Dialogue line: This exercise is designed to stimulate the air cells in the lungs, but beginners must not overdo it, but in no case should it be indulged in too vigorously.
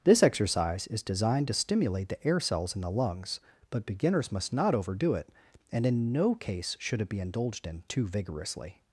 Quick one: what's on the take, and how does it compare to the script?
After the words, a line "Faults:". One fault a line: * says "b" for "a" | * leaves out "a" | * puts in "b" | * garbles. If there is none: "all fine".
This exercise is designed to stimulate the air cells in the lungs, but beginners must not overdo it, and in no case should it be indulged in too vigorously.
Faults:
* says "and" for "but"